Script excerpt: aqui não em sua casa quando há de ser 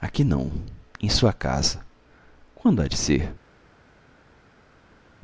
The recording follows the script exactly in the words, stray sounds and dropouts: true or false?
true